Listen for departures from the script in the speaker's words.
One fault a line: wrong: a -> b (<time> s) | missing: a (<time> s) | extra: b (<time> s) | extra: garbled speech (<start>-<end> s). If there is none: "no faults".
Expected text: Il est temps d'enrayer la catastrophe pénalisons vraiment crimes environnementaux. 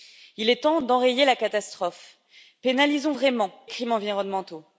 no faults